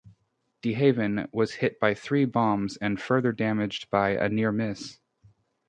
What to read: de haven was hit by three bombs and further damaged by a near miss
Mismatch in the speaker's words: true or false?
false